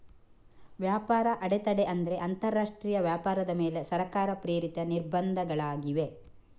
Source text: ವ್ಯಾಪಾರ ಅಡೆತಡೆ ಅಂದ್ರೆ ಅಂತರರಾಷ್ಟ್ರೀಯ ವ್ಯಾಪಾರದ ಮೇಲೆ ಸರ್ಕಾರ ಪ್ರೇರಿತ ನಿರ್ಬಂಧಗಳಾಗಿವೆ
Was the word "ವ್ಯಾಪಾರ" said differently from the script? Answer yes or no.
no